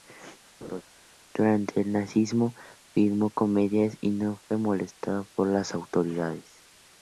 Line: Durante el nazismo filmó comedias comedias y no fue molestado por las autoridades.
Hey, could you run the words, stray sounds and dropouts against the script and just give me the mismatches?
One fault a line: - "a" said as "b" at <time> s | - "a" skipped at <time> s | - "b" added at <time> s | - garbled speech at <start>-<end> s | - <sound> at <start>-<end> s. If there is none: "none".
- laugh at 0.6-0.8 s
- "comedias" skipped at 4.0 s